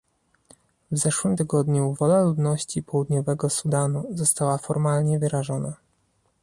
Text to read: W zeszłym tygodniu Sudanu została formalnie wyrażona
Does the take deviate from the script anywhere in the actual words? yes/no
yes